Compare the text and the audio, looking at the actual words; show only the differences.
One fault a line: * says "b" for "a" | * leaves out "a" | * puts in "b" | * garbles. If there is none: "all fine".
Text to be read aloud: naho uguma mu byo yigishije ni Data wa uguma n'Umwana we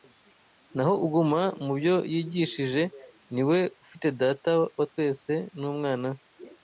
* puts in "we ufite"
* says "twese" for "uguma"